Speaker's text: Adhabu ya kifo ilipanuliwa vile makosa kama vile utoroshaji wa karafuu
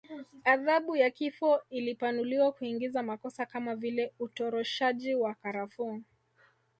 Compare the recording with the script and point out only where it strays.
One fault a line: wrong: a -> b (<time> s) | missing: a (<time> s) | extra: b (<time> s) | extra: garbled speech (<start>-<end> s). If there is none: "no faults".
wrong: vile -> kuingiza (2.5 s)